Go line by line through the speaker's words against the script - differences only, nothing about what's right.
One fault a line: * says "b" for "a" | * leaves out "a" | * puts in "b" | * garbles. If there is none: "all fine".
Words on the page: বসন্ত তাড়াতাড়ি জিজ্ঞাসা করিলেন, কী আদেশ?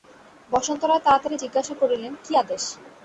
* puts in "রায়"